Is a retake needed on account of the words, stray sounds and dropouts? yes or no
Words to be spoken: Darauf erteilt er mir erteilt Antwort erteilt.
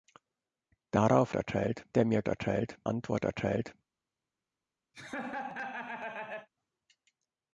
yes